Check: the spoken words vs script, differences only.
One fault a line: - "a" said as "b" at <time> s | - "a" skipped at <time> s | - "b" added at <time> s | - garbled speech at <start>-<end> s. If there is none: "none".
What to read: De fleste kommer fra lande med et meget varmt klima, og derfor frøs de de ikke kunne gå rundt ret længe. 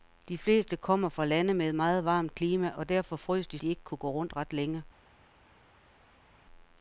none